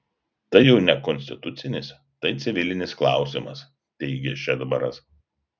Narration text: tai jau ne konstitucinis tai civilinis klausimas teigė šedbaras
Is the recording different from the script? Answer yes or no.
no